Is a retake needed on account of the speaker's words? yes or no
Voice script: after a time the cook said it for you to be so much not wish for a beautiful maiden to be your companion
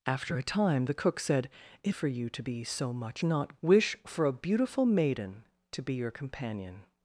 no